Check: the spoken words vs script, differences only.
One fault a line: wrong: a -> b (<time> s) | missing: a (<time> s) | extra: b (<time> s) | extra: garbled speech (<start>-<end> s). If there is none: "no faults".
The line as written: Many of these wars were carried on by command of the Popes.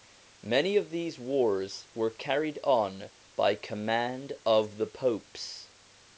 no faults